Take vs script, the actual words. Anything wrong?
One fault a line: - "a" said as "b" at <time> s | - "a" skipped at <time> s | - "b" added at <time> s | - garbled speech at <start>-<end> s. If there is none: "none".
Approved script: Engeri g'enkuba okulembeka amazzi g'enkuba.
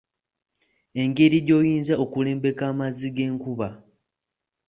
- "g'enkuba" said as "gy'oyinza" at 1.5 s